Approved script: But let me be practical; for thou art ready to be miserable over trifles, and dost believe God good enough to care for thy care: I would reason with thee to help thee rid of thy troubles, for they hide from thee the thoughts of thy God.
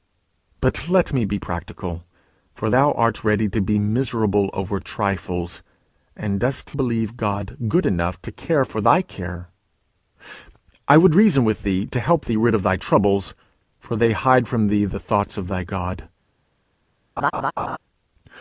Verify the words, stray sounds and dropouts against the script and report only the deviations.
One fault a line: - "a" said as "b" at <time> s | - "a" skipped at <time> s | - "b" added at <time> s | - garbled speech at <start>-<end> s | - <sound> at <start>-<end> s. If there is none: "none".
- laugh at 17.2-17.8 s